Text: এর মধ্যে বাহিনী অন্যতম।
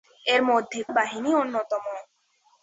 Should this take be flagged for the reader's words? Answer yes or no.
no